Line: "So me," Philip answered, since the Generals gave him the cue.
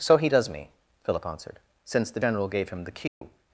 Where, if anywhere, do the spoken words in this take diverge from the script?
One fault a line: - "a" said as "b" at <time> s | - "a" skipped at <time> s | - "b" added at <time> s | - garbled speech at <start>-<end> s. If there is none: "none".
- "he does" added at 0.2 s
- "Generals" said as "General" at 2.2 s